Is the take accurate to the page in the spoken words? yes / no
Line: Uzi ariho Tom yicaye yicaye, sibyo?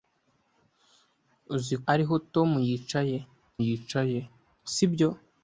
yes